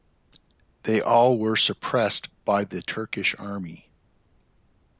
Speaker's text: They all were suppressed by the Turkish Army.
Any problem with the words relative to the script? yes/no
no